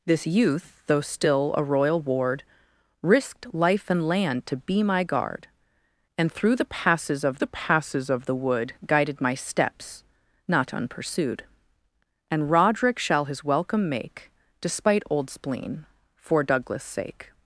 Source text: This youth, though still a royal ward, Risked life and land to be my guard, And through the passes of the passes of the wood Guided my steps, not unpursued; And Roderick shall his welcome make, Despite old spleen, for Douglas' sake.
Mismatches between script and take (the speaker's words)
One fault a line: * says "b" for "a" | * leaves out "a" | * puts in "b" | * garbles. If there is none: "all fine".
all fine